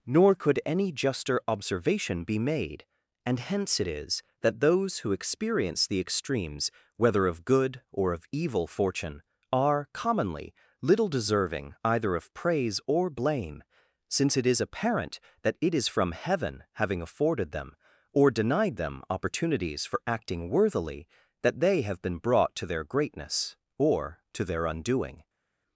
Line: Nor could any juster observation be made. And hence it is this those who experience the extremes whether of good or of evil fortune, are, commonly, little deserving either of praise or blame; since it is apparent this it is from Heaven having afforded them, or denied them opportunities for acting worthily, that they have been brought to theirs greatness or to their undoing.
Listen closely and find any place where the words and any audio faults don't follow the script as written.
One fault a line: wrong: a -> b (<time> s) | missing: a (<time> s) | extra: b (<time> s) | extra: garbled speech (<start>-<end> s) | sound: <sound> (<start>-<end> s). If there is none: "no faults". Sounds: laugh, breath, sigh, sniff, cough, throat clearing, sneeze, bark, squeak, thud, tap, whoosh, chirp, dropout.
wrong: this -> that (4.4 s)
wrong: this -> that (15.4 s)
wrong: theirs -> their (22.7 s)